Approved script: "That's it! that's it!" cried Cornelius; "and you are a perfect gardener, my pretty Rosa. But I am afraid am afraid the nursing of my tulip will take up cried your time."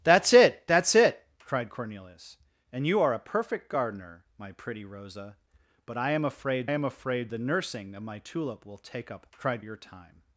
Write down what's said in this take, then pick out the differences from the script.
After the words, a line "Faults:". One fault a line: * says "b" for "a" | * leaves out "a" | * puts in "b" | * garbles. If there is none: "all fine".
"That's it! that's it!" cried Cornelius; "and you are a perfect gardener, my pretty Rosa. But I am afraid am afraid the nursing of my tulip will take up cried your time."
Faults:
all fine